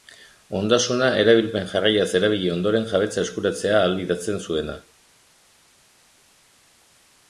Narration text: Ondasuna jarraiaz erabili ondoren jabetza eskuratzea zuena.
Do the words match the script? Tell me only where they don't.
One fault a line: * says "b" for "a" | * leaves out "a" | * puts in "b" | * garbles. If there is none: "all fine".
* puts in "erabilpen"
* puts in "ahalbidetzen"